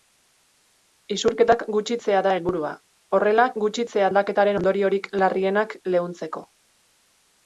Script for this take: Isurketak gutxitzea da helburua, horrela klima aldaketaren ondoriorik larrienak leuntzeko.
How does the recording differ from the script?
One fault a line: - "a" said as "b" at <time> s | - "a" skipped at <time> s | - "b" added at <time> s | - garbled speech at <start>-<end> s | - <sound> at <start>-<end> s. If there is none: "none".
- "klima" said as "gutxitzea" at 3.6 s